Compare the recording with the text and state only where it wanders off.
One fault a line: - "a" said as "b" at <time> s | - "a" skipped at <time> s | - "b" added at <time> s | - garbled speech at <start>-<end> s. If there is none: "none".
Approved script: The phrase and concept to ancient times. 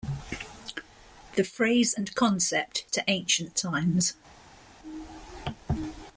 none